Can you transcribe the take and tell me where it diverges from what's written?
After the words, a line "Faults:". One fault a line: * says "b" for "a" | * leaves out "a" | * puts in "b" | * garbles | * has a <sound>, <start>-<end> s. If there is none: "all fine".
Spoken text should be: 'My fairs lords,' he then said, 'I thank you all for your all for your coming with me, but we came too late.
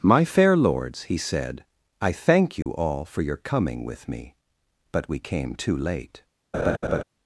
'My fair lords,' he said, 'I thank you all for your coming with me, but we came too late.
Faults:
* says "fair" for "fairs"
* leaves out "then"
* has a dropout, 2.6-2.7 s
* leaves out "all for your"
* has a laugh, 6.5-7.0 s